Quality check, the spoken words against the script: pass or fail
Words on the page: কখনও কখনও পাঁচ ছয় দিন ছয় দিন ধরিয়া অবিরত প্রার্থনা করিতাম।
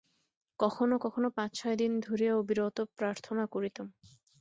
fail